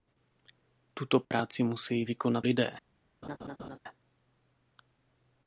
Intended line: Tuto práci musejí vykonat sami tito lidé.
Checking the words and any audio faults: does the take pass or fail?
fail